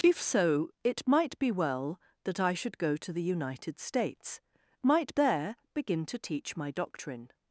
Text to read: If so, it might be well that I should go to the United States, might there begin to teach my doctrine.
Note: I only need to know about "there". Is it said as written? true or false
true